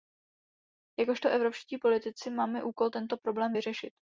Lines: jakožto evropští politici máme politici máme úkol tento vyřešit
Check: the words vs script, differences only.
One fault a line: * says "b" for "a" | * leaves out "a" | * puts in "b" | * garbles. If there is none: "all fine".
* leaves out "politici máme"
* puts in "problém"